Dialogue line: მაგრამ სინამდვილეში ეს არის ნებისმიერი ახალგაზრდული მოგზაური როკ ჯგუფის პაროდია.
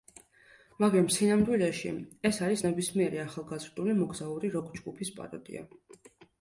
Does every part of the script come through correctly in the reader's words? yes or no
yes